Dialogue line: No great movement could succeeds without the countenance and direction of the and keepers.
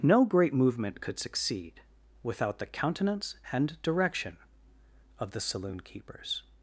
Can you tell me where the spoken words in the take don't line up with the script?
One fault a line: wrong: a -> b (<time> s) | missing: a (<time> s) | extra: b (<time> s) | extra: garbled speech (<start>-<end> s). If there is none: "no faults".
wrong: succeeds -> succeed (1.2 s)
wrong: and -> saloon (5.4 s)